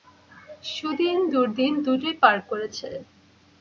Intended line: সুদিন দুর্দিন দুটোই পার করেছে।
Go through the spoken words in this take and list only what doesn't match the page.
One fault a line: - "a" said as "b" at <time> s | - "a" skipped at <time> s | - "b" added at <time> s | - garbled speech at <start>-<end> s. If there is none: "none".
none